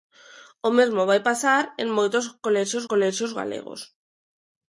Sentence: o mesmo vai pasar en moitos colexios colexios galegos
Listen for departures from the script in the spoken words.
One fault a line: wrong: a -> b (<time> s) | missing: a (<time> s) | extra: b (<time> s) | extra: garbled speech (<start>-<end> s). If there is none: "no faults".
no faults